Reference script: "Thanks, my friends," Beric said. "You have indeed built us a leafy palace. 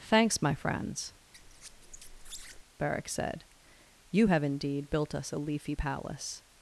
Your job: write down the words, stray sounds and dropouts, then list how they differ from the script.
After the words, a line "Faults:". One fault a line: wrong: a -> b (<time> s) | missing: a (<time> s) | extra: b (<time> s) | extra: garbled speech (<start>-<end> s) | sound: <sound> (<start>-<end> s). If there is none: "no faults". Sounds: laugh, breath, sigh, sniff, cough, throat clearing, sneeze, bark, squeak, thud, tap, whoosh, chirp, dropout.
"Thanks, my friends," Beric said. "You have indeed built us a leafy palace.
Faults:
sound: squeak (1.3-2.6 s)